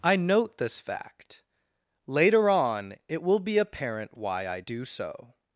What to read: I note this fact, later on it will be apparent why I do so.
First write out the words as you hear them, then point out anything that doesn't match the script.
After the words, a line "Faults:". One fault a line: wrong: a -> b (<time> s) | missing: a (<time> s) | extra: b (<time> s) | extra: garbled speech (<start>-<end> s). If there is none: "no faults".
I note this fact, later on it will be apparent why I do so.
Faults:
no faults